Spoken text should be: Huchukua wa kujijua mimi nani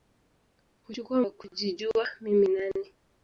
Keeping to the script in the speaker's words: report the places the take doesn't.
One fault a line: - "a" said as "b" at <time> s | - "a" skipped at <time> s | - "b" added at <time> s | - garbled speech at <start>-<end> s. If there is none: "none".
none